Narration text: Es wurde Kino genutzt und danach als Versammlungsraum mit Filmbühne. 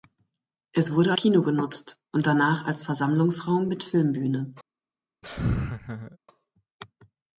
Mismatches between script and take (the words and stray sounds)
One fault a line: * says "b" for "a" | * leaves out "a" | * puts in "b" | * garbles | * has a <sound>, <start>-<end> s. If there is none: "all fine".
* has a laugh, 5.2-6.2 s